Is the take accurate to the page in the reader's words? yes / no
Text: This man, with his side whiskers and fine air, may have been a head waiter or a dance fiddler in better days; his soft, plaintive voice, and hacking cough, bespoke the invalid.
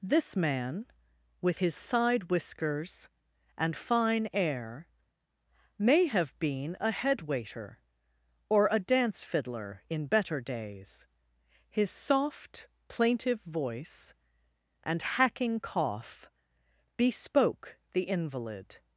yes